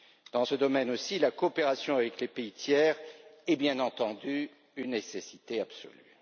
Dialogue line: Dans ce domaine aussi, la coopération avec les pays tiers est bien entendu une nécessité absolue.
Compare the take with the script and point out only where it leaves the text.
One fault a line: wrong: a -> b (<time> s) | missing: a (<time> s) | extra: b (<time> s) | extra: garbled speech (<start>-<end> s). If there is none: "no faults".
no faults